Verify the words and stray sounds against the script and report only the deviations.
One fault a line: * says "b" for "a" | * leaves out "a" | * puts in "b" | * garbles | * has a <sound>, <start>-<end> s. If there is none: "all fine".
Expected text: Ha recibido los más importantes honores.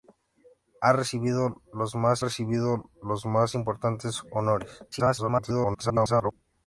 * puts in "recibido los más"
* garbles